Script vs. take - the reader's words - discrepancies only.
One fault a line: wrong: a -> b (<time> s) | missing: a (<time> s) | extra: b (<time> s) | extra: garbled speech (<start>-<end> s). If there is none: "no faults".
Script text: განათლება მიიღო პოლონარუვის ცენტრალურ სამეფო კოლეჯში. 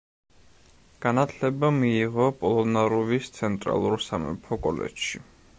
no faults